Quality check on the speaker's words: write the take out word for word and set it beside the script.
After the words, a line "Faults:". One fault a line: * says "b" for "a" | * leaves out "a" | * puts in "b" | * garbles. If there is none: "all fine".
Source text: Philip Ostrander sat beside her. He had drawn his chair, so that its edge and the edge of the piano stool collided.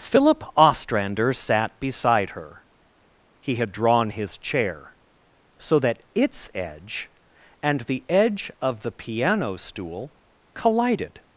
Philip Ostrander sat beside her. He had drawn his chair, so that its edge and the edge of the piano stool collided.
Faults:
all fine